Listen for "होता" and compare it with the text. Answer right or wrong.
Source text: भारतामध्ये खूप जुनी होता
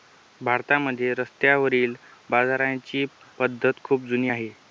wrong